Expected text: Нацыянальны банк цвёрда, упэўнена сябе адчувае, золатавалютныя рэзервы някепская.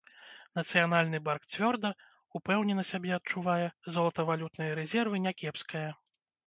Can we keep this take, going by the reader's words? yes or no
yes